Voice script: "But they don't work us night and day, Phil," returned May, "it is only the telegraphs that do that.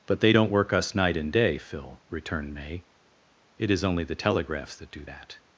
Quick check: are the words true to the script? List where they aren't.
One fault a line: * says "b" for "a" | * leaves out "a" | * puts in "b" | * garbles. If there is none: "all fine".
all fine